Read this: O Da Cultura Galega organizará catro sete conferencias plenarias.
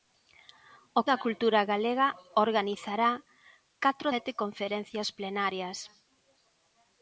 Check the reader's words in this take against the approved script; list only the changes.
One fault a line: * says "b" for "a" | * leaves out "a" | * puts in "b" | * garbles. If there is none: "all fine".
all fine